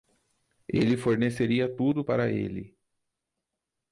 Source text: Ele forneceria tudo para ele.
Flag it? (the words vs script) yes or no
no